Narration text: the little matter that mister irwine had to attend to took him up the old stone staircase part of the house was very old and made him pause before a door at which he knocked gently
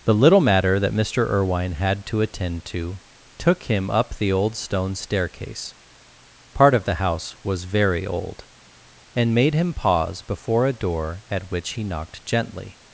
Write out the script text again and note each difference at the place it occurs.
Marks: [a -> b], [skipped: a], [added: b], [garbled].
the little matter that mister irwine had to attend to took him up the old stone staircase part of the house was very old and made him pause before a door at which he knocked gently